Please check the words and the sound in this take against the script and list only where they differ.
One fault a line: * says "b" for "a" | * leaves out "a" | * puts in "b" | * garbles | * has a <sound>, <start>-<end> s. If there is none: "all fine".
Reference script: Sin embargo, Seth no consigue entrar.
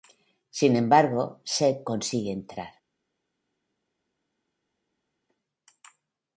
* leaves out "no"